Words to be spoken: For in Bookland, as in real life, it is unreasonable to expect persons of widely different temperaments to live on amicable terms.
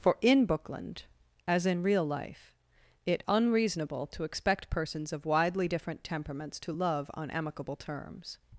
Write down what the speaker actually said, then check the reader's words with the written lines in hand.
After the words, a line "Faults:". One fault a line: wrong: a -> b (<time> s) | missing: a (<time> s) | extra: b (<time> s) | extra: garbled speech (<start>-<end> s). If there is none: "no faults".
For in Bookland, as in real life, it unreasonable to expect persons of widely different temperaments to love on amicable terms.
Faults:
missing: is (3.2 s)
wrong: live -> love (6.7 s)